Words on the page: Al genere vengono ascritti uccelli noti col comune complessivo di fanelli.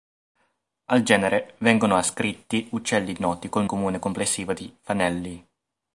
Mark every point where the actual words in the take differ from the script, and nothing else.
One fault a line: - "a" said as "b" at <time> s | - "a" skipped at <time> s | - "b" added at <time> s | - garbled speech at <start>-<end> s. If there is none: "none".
none